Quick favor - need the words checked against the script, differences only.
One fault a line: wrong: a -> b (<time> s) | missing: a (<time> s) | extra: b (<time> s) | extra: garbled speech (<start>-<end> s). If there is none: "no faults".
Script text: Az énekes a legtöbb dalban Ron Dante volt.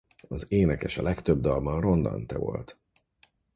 no faults